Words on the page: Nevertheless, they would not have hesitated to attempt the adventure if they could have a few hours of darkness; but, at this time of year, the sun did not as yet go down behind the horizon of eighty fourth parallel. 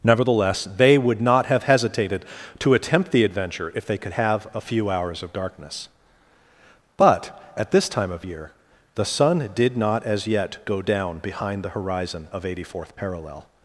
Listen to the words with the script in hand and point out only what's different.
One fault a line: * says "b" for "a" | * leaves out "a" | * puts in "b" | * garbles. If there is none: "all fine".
all fine